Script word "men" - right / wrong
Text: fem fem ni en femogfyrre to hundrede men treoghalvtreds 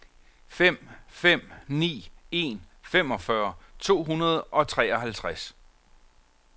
wrong